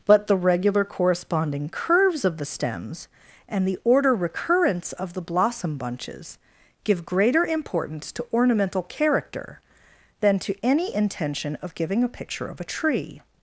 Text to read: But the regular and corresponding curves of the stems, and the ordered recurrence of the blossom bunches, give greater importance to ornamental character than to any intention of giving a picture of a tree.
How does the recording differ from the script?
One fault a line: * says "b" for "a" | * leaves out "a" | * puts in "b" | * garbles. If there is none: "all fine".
* leaves out "and"
* says "order" for "ordered"